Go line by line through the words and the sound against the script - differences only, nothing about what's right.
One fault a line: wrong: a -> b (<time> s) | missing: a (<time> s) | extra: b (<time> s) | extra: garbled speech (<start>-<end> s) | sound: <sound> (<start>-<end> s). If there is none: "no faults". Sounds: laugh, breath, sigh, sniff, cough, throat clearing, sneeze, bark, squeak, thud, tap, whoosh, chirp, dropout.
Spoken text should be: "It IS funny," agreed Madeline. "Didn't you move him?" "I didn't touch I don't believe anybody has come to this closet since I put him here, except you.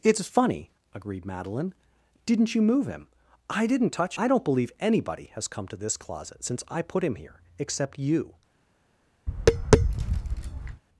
sound: tap (9.3-10.8 s)